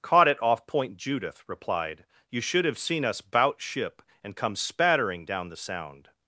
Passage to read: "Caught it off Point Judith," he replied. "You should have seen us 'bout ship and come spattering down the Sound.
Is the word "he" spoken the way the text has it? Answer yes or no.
no